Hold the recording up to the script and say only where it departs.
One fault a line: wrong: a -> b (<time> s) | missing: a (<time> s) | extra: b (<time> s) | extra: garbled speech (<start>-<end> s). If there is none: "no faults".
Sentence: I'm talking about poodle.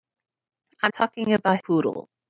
no faults